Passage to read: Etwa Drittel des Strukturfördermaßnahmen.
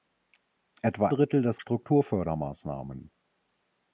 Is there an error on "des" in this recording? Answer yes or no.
no